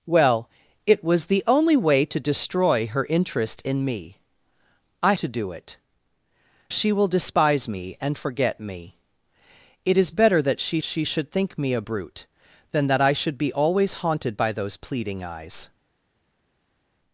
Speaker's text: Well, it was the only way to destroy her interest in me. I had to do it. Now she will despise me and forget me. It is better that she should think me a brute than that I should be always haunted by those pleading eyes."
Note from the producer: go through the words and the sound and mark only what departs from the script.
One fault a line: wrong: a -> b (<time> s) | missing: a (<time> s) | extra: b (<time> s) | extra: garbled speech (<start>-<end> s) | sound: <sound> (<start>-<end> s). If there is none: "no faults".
missing: had (5.1 s)
missing: Now (5.8 s)
extra: she (10.8 s)